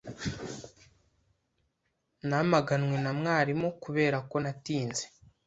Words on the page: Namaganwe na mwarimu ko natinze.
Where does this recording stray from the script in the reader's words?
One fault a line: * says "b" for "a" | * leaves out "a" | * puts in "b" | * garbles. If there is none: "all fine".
* puts in "kubera"